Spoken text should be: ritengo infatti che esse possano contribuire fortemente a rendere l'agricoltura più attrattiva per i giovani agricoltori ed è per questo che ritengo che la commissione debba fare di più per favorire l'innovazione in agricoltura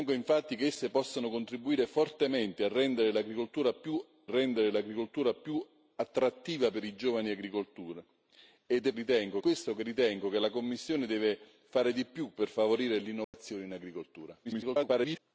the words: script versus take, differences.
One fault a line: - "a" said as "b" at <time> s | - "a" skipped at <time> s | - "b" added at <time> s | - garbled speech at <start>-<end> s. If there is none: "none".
- "rendere l'agricoltura più" added at 4.3 s
- "per" said as "ritengo" at 8.9 s
- garbled speech at 14.4-15.2 s